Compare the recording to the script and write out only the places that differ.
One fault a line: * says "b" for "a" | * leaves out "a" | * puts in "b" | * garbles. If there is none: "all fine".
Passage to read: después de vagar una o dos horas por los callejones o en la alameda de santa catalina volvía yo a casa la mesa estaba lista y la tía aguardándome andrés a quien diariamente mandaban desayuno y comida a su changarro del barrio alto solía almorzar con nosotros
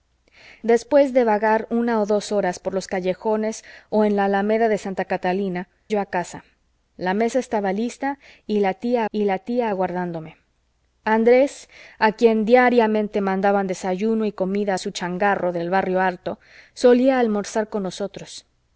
* leaves out "volvía"
* puts in "y la tía"